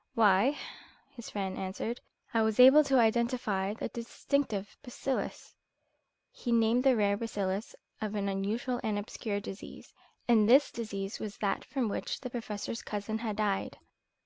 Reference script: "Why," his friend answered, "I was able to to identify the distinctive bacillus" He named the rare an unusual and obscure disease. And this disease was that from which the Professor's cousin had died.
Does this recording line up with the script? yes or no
no